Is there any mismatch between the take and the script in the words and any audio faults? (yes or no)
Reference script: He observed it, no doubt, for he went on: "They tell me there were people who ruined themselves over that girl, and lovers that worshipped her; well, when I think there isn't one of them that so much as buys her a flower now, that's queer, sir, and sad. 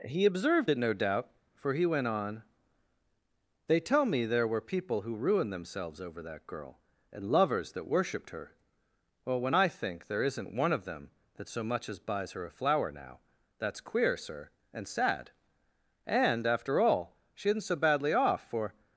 yes